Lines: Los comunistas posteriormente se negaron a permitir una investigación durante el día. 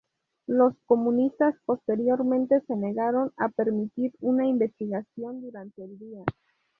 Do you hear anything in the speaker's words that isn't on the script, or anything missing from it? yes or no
no